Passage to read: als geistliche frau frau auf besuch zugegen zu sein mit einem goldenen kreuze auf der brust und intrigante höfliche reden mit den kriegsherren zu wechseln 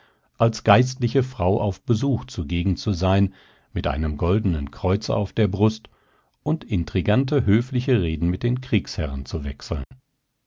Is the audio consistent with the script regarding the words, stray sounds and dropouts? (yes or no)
no